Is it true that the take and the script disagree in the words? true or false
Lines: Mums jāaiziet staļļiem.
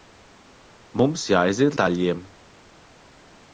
false